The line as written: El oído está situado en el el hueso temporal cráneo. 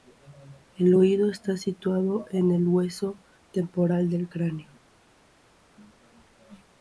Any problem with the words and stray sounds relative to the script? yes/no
yes